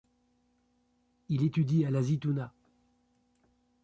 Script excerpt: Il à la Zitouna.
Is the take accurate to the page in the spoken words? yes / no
no